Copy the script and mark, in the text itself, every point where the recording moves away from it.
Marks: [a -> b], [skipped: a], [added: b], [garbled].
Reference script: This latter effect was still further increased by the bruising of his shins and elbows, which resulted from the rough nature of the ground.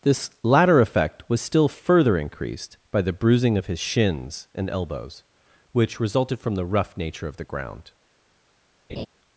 This latter effect was still further increased by the bruising of his shins and elbows, which resulted from the rough nature of the ground.